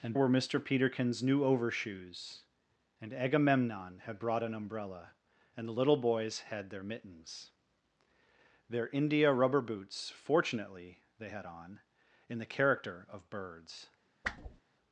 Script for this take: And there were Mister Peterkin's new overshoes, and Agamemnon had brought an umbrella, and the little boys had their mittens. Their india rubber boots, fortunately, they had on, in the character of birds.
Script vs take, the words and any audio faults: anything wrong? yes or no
yes